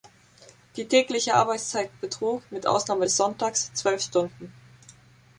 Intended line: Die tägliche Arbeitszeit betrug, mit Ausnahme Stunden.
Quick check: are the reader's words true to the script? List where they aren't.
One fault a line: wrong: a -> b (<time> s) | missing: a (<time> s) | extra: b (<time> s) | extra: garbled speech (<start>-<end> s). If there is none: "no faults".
extra: des Sonntags zwölf (3.0 s)